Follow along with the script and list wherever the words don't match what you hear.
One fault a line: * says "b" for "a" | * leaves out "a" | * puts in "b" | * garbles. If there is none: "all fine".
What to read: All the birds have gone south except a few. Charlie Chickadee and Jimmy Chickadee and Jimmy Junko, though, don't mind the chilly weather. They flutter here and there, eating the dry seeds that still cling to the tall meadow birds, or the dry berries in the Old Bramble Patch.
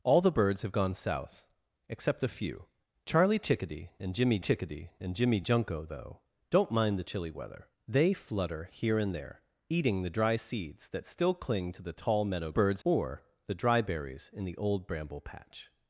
all fine